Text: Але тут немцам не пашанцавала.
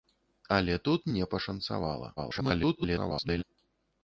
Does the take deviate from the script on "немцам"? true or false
true